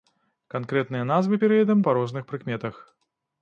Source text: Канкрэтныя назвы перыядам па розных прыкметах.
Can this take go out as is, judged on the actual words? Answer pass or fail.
pass